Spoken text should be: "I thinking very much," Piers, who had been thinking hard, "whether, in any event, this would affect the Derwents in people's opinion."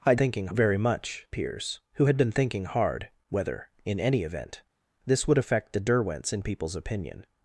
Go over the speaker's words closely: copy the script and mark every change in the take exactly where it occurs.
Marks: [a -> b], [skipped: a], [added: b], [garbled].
"I thinking very much," Piers, who had been thinking hard, "whether, in any event, this would affect the Derwents in people's opinion."